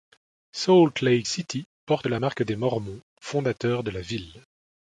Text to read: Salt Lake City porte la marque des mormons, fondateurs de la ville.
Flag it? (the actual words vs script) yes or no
no